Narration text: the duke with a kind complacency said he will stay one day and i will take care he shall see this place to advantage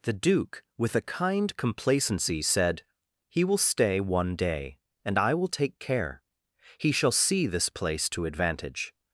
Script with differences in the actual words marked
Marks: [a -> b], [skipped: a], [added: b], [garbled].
the duke with a kind complacency said he will stay one day and i will take care he shall see this place to advantage